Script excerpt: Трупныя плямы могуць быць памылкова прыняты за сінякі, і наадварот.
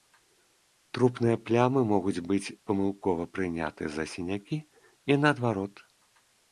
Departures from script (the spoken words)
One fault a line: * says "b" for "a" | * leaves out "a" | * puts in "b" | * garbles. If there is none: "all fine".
all fine